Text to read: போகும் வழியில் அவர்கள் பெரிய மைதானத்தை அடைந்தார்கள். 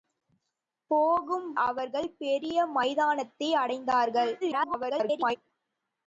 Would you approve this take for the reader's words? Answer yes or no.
no